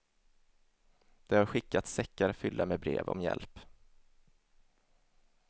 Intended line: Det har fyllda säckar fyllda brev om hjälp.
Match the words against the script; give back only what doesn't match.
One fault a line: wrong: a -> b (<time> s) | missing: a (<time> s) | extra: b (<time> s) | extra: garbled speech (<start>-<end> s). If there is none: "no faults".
wrong: fyllda -> skickats (1.4 s)
extra: med (2.6 s)